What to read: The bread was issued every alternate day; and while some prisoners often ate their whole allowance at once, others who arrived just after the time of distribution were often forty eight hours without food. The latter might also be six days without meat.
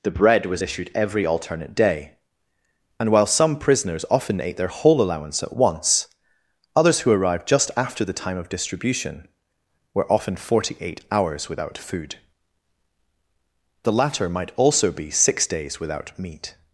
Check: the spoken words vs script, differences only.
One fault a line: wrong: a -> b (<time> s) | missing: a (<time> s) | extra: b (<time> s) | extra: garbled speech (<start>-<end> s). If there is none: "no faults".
no faults